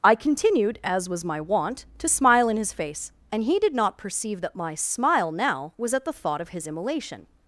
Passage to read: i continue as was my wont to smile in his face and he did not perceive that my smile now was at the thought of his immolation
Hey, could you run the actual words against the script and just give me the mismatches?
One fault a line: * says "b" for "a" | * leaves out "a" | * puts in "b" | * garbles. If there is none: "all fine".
* says "continued" for "continue"